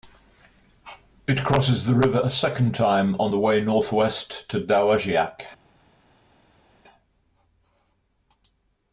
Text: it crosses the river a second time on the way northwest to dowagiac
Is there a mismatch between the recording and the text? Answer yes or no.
no